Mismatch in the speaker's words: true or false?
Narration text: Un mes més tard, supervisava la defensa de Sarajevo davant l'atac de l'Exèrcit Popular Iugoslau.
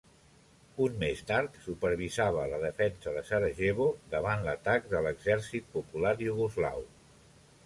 true